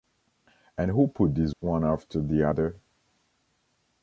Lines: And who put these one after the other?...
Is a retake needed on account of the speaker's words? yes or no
no